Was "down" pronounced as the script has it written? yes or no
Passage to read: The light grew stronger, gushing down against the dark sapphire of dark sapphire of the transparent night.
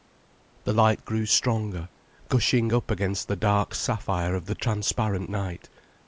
no